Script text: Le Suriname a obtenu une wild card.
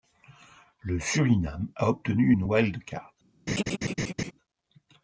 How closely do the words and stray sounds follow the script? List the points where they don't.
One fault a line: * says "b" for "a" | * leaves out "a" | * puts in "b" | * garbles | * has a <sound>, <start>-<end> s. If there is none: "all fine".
* has a laugh, 3.5-4.3 s